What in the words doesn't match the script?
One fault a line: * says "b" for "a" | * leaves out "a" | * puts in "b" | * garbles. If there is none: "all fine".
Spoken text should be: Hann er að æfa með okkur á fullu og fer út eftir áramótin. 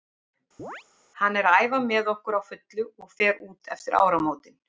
all fine